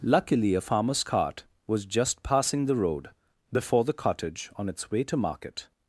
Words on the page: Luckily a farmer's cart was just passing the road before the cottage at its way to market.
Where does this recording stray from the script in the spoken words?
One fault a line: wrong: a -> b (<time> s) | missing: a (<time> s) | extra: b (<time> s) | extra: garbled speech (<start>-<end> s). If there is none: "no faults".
wrong: at -> on (4.6 s)